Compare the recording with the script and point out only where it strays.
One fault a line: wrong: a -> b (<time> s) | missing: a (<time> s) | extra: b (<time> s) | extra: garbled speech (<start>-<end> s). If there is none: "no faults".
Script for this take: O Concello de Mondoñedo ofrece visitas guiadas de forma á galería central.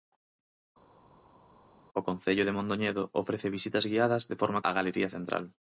no faults